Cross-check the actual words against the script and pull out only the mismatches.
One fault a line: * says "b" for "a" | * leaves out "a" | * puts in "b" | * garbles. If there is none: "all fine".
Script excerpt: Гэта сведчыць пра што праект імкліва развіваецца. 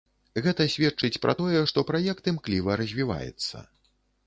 * puts in "тое"